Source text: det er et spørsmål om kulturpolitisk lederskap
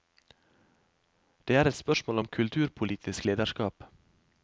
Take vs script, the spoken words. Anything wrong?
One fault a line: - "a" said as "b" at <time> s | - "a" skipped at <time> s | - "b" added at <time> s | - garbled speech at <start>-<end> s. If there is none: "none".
none